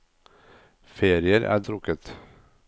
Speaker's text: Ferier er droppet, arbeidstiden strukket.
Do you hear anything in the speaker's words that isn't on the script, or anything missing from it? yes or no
yes